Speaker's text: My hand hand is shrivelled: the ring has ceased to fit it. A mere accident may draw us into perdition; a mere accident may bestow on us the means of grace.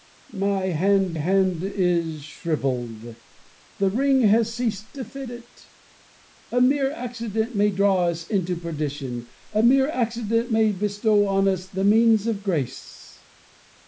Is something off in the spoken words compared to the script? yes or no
no